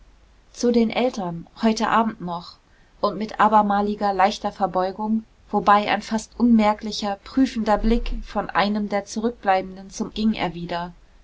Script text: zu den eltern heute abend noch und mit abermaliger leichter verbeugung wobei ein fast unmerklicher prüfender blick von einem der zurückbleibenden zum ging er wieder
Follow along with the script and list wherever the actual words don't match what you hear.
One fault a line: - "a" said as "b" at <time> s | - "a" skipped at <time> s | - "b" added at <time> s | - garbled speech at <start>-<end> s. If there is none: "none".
none